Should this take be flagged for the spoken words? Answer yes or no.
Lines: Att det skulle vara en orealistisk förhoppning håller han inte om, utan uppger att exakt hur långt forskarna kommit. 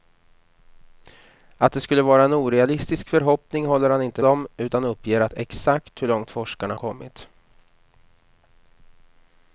no